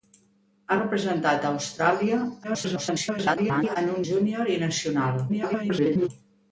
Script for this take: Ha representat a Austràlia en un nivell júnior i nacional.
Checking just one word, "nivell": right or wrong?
wrong